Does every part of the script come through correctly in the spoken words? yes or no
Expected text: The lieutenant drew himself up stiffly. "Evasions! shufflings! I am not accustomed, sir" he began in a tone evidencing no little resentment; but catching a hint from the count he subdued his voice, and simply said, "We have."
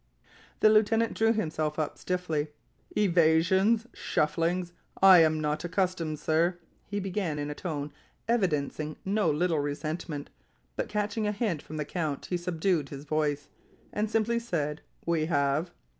yes